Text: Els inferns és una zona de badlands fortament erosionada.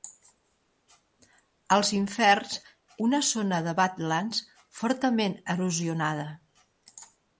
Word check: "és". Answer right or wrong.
wrong